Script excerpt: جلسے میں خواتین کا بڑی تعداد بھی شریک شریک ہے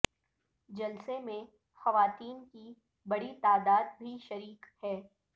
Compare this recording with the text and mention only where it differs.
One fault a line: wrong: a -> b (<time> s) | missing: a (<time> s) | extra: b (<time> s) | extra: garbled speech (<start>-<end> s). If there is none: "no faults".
wrong: کا -> کی (2.4 s)
missing: شریک (4.6 s)